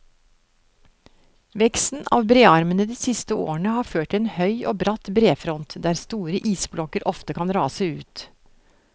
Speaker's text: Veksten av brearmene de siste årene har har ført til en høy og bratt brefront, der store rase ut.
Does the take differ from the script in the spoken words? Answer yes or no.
yes